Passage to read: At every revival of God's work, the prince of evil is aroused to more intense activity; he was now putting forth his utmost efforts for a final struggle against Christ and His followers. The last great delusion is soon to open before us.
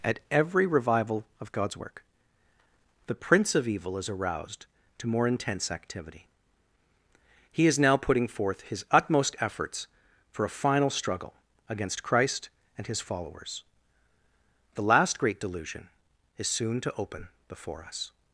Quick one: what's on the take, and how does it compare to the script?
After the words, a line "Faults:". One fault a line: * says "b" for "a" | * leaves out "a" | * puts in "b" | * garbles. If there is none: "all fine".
At every revival of God's work, the prince of evil is aroused to more intense activity; he is now putting forth his utmost efforts for a final struggle against Christ and His followers. The last great delusion is soon to open before us.
Faults:
* says "is" for "was"